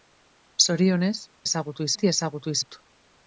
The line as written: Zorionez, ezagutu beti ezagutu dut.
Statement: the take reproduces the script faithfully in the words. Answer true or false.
true